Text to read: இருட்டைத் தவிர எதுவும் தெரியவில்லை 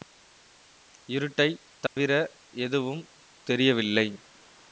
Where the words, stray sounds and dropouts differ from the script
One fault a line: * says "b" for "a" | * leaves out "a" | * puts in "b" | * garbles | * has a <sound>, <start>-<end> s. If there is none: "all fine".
* has a dropout, 1.9-2.0 s